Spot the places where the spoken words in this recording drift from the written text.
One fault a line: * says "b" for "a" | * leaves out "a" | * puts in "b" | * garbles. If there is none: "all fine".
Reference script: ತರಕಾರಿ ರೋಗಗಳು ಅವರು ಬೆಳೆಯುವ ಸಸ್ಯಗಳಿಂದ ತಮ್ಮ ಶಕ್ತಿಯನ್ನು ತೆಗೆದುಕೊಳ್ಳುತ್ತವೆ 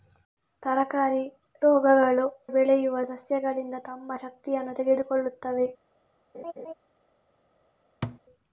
* leaves out "ಅವರು"